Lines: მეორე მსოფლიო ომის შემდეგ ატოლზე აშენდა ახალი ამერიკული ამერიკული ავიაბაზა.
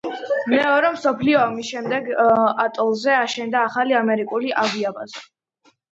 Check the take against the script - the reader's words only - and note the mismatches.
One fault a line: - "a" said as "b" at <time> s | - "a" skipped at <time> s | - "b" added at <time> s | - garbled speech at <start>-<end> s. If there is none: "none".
- "ამერიკული" skipped at 4.6 s